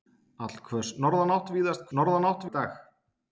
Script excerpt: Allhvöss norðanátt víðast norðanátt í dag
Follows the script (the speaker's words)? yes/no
yes